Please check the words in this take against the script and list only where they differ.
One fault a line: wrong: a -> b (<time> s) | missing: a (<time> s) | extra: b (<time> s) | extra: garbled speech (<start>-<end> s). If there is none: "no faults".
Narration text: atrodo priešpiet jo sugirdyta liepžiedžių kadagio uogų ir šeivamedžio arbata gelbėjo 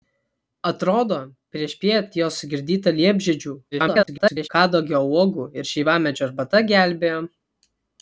extra: garbled speech (3.7-4.5 s)